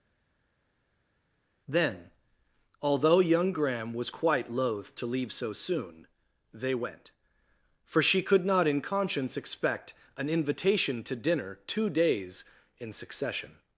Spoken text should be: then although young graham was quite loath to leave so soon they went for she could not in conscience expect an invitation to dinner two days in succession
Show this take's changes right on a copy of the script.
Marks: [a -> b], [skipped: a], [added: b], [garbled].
then although young graham was quite loath to leave so soon they went for she could not in conscience expect an invitation to dinner two days in succession